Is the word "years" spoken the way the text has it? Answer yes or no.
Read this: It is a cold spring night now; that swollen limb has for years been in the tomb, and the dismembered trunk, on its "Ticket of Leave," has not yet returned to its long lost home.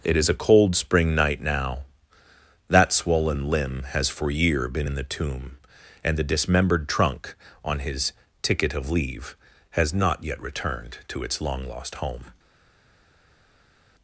no